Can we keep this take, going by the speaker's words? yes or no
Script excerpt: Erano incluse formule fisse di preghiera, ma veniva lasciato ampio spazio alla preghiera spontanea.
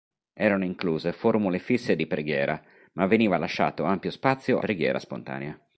no